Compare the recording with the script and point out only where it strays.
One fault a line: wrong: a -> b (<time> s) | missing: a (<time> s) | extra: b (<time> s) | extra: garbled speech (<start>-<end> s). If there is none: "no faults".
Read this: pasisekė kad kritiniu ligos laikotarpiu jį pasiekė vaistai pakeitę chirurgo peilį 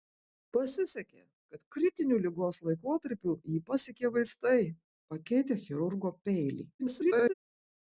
extra: garbled speech (6.8-7.3 s)